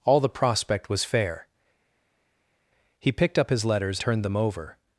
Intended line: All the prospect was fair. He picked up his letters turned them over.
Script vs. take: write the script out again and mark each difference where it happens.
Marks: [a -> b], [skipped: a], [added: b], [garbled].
All the prospect was fair. He picked up his letters turned them over.